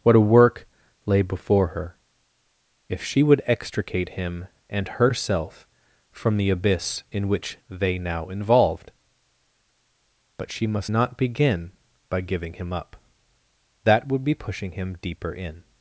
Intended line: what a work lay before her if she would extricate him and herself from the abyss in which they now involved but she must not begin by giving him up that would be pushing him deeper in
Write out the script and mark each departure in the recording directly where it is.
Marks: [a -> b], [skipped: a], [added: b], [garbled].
what a work lay before her if she would extricate him and herself from the abyss in which they now involved but she must not begin by giving him up that would be pushing him deeper in